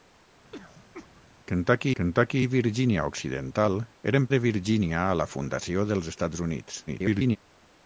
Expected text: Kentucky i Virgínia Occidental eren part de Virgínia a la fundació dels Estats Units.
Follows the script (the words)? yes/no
no